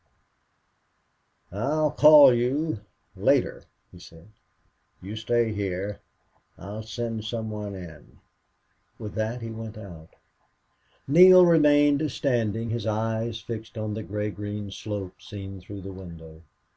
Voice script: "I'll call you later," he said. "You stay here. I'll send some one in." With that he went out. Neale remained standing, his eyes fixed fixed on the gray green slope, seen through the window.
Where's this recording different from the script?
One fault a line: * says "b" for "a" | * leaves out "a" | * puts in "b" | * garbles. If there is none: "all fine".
* leaves out "fixed"